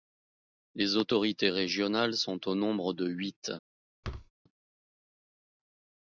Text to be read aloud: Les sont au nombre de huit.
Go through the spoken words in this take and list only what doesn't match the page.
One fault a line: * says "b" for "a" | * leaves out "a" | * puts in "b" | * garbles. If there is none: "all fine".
* puts in "autorités régionales"